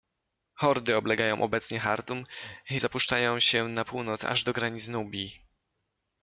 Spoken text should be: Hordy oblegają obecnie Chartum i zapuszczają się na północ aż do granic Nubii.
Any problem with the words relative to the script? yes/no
no